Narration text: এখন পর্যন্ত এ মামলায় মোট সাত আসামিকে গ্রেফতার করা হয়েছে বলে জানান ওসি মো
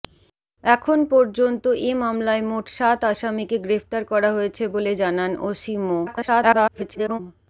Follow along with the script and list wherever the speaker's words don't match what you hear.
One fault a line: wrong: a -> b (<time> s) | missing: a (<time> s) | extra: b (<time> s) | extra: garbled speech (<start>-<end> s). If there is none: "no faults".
extra: garbled speech (6.1-7.2 s)